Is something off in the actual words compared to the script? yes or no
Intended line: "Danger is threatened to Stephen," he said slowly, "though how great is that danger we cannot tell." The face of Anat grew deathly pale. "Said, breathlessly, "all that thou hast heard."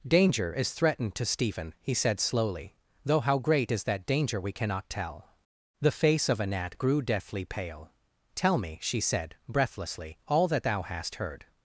yes